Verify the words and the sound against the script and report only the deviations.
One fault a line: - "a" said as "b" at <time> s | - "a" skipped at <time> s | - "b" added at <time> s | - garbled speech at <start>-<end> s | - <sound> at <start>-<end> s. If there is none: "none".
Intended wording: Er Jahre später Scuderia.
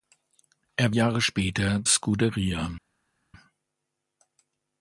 none